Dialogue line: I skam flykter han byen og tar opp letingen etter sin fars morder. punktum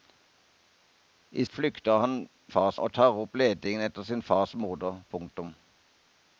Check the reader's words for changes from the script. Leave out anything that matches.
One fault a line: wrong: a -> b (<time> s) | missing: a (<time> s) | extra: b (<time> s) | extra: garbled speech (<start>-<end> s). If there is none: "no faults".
missing: skam (1.4 s)
wrong: byen -> fars (2.5 s)